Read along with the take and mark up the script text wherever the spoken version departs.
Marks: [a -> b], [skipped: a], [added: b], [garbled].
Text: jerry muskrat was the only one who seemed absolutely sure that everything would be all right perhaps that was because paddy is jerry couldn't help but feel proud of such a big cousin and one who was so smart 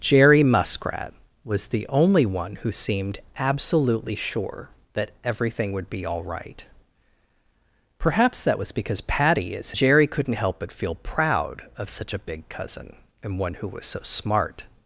jerry muskrat was the only one who seemed absolutely sure that everything would be all right perhaps that was because paddy is jerry couldn't help but feel proud of such a big cousin and one who was so smart